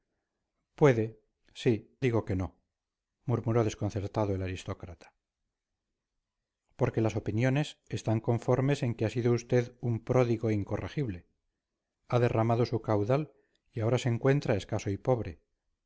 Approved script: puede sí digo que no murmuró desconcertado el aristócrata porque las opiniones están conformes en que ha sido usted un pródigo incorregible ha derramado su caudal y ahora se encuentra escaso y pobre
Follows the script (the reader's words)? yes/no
yes